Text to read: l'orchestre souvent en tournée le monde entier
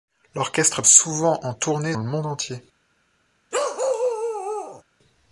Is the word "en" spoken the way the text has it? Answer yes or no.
yes